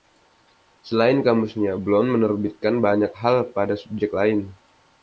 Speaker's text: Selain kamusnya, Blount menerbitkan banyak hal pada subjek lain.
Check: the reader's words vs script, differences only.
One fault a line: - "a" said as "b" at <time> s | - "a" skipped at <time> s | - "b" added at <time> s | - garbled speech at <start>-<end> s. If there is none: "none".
none